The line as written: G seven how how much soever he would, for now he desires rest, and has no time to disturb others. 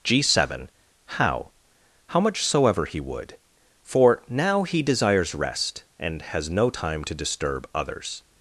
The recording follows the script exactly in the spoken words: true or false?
true